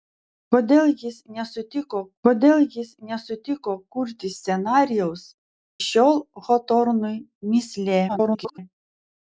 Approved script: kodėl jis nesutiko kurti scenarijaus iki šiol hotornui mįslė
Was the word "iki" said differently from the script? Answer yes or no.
yes